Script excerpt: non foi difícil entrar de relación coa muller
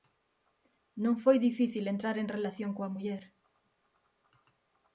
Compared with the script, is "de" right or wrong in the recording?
wrong